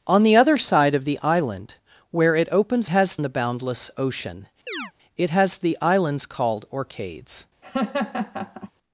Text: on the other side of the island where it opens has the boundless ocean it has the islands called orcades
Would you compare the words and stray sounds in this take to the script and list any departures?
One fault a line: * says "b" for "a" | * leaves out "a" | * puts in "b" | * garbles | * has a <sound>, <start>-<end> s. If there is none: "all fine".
* has a chirp, 4.7-4.9 s
* has a laugh, 7.6-8.7 s